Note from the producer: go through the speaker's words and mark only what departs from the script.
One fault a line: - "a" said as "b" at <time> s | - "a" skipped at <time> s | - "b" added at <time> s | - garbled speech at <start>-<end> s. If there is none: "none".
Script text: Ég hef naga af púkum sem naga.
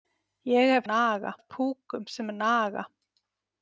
none